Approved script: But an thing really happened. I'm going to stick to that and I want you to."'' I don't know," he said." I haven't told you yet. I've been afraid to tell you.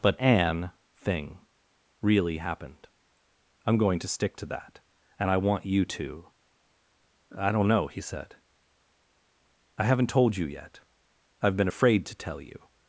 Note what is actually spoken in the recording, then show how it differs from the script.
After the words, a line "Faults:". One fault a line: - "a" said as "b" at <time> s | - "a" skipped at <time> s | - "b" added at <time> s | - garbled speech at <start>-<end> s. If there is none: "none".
But an thing really happened. I'm going to stick to that and I want you to."'' I don't know," he said." I haven't told you yet. I've been afraid to tell you.
Faults:
none